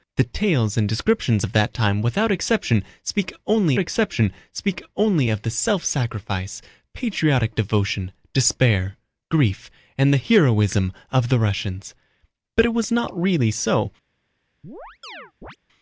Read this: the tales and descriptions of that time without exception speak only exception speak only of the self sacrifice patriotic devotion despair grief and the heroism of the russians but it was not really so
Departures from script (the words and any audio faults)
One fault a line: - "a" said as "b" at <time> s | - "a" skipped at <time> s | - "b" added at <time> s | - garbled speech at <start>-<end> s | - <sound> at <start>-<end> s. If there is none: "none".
- chirp at 14.6-15.6 s